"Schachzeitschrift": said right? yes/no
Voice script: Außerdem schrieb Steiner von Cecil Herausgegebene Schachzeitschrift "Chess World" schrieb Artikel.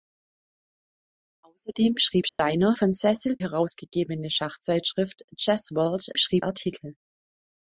yes